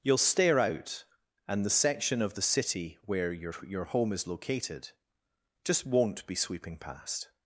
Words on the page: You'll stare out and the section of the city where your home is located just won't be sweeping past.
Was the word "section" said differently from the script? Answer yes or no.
no